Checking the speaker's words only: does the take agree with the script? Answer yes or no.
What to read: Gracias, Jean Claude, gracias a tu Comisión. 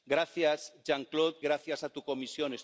yes